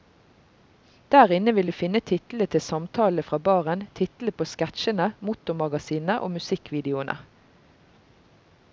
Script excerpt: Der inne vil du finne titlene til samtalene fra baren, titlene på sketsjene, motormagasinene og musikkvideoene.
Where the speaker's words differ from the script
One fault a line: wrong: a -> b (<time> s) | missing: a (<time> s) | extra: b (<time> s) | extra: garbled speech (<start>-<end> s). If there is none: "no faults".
no faults